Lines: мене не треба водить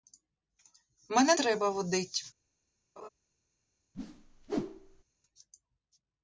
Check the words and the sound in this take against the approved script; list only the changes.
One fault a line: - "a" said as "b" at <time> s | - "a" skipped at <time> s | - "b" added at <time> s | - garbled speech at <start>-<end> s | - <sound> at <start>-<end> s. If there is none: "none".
- "не" skipped at 1.4 s
- laugh at 3.0-3.1 s
- whoosh at 3.9-5.0 s